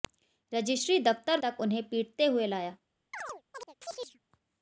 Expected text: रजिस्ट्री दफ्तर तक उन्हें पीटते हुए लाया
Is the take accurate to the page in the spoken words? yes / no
yes